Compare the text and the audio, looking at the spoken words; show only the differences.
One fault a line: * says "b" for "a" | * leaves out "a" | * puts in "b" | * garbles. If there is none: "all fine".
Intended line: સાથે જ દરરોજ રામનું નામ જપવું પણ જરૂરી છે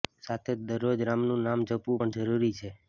all fine